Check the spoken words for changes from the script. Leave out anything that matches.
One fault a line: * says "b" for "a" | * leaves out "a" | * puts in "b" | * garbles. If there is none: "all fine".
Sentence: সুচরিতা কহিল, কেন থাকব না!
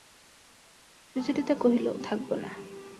* leaves out "কেন"